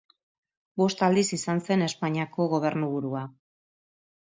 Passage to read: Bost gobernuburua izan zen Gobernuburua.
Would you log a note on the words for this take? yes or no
yes